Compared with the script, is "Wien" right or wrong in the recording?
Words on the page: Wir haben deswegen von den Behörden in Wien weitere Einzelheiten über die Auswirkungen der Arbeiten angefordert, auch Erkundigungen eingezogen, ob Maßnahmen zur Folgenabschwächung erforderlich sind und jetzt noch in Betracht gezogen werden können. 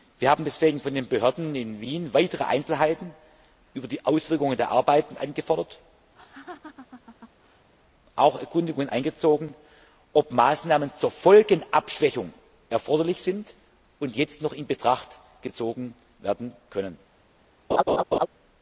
right